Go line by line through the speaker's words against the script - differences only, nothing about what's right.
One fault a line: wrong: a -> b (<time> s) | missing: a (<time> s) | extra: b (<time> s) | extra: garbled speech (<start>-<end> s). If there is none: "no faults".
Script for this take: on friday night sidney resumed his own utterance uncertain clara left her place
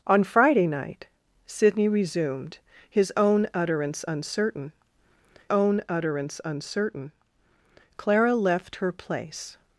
extra: own utterance uncertain (5.5 s)